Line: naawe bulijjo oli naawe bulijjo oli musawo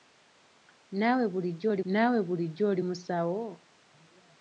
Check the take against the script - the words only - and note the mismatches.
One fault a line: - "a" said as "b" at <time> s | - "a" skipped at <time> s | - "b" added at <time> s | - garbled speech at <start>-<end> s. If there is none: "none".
none